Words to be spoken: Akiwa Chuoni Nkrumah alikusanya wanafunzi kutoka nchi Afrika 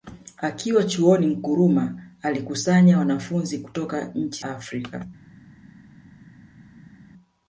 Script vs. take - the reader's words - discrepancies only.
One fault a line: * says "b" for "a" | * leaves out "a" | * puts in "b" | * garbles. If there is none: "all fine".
all fine